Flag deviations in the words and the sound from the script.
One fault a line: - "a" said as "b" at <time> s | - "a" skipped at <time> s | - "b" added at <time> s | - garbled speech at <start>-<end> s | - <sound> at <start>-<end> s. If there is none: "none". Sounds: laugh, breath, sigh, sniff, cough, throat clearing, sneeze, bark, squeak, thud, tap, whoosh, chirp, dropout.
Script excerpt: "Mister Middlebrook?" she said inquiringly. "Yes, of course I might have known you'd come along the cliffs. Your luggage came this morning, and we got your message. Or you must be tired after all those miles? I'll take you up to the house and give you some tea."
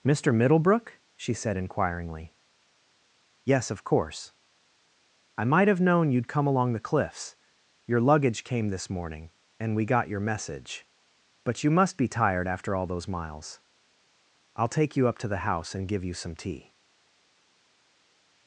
- "Or" said as "But" at 11.4 s